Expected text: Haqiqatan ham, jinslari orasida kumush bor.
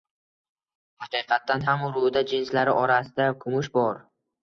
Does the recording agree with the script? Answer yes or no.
no